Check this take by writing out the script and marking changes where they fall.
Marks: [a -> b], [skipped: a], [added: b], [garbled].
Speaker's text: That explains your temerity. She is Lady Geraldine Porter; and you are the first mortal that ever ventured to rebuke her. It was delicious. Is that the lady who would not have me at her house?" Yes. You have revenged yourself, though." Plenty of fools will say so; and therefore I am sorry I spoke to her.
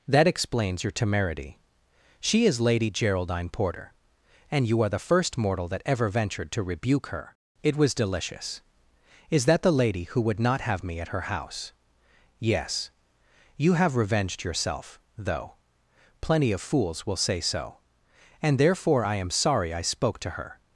That explains your temerity. She is Lady Geraldine Porter; and you are the first mortal that ever ventured to rebuke her. It was delicious. Is that the lady who would not have me at her house?" Yes. You have revenged yourself, though." Plenty of fools will say so; and therefore I am sorry I spoke to her.